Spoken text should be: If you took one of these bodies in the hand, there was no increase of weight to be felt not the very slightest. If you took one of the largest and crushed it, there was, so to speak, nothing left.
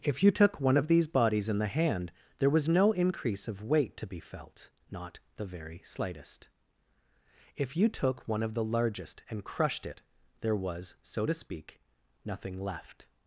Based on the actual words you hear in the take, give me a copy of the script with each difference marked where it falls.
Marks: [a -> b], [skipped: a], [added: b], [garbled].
If you took one of these bodies in the hand, there was no increase of weight to be felt not the very slightest. If you took one of the largest and crushed it, there was, so to speak, nothing left.